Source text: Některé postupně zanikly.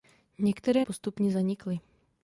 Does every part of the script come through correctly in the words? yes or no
yes